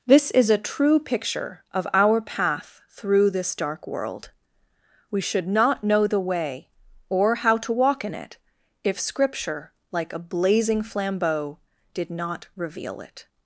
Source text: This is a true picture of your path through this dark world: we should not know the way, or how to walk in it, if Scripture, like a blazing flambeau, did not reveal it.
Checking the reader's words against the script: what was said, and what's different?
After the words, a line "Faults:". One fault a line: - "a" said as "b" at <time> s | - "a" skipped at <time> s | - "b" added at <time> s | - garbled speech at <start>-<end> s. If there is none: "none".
This is a true picture of our path through this dark world: we should not know the way, or how to walk in it, if Scripture, like a blazing flambeau, did not reveal it.
Faults:
- "your" said as "our" at 1.9 s